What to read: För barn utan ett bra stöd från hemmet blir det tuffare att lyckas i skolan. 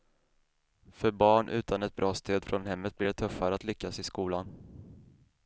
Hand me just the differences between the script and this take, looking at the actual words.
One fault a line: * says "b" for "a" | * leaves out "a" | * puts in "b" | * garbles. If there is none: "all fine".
all fine